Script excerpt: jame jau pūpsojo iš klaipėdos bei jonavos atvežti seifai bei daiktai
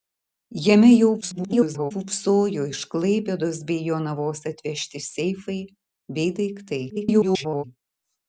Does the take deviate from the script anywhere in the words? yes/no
yes